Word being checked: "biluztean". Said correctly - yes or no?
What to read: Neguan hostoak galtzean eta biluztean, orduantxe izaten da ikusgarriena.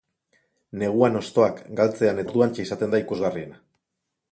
no